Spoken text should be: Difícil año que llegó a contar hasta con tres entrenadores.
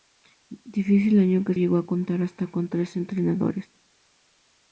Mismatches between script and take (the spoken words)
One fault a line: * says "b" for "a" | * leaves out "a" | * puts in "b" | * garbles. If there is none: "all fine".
all fine